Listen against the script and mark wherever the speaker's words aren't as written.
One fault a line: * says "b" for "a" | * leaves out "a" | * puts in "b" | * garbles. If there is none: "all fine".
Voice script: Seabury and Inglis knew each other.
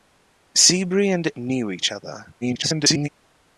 * leaves out "Inglis"
* garbles